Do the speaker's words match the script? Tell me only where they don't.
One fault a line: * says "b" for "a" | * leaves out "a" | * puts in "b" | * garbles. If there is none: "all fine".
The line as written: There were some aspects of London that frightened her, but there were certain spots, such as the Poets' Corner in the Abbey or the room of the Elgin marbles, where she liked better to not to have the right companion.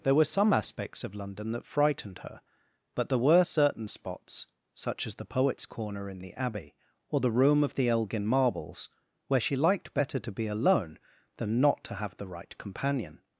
* puts in "be alone than"